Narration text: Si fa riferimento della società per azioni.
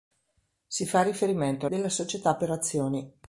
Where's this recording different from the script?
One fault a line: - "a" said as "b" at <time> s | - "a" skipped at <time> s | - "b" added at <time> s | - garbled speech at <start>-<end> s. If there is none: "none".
none